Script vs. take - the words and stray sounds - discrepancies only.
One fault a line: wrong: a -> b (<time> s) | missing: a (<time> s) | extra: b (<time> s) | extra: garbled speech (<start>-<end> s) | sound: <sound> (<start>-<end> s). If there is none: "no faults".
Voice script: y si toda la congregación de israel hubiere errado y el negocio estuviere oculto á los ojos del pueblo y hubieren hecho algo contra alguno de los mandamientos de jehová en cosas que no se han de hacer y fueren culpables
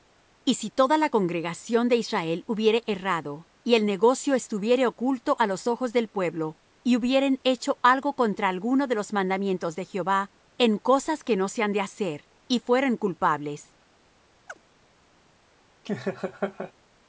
sound: chirp (14.5-14.6 s)
sound: laugh (15.9-16.7 s)